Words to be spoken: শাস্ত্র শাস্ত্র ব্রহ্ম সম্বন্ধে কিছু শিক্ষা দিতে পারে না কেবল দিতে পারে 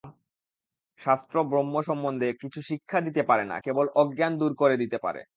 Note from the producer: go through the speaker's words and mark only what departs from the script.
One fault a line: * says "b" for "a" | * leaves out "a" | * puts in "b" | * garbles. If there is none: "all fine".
* leaves out "শাস্ত্র"
* puts in "অজ্ঞান দূর করে"